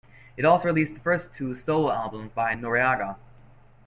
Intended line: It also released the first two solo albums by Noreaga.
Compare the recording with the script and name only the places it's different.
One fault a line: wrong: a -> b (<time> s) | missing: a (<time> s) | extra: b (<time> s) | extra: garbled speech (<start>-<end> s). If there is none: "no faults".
no faults